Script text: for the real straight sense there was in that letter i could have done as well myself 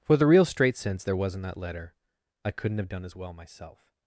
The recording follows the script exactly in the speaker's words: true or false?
false